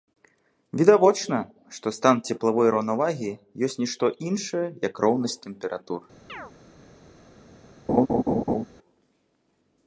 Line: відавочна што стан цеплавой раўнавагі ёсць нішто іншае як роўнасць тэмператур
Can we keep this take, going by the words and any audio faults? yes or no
no